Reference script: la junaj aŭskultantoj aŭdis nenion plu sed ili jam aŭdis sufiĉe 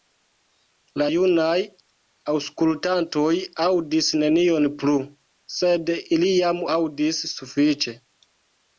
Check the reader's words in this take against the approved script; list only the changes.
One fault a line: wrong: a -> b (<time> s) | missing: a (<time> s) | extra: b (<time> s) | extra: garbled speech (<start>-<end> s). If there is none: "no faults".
no faults